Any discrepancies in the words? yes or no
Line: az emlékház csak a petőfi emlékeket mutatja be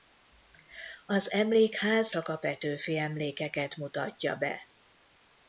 no